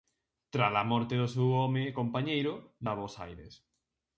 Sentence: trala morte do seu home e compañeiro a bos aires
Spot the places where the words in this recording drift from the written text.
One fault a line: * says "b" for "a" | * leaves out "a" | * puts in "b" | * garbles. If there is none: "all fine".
all fine